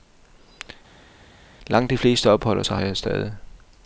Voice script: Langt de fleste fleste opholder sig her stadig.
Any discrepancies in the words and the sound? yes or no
yes